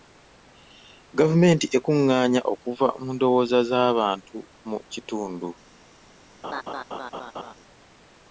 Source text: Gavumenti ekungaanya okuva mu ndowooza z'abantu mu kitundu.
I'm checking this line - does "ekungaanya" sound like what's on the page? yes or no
yes